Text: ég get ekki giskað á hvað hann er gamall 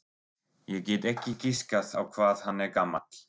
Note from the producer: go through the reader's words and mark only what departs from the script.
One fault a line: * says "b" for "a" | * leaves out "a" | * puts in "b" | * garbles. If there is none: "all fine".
all fine